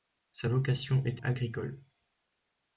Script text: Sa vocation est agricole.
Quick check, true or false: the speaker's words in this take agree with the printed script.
true